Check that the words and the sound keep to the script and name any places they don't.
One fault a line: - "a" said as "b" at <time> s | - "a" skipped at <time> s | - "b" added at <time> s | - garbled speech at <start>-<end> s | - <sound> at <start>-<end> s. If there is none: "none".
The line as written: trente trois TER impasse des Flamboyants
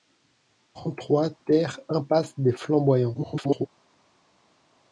- garbled speech at 3.1-3.7 s